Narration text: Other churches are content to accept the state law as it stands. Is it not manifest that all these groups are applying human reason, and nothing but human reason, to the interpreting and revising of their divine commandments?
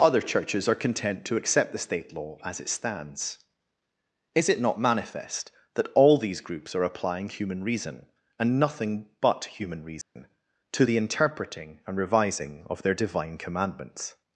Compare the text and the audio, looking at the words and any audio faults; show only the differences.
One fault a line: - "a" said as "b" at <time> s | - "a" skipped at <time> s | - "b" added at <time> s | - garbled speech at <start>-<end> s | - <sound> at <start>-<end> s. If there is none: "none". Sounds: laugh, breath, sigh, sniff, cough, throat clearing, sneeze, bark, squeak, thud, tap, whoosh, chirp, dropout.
- dropout at 10.0-10.2 s